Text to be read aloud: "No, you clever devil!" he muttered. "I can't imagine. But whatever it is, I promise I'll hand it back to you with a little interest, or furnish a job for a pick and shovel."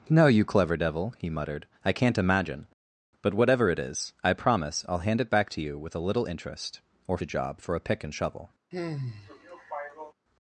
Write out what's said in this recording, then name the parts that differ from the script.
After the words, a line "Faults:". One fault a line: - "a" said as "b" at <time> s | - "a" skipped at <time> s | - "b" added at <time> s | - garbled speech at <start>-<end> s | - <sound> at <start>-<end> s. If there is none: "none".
"No, you clever devil!" he muttered. "I can't imagine. But whatever it is, I promise I'll hand it back to you with a little interest, or a job for a pick and shovel."
Faults:
- "furnish" skipped at 7.2 s
- sigh at 8.7-10.1 s